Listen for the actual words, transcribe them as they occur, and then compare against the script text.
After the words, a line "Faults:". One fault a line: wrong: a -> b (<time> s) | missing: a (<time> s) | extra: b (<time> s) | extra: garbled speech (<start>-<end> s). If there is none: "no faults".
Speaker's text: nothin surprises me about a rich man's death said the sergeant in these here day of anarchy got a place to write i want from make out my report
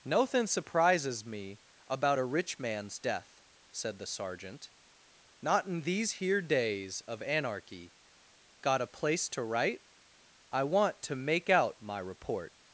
nothin surprises me about a rich man's death said the sergeant not in these here days of anarchy got a place to write i want to make out my report
Faults:
extra: not (5.4 s)
wrong: day -> days (6.4 s)
wrong: from -> to (11.0 s)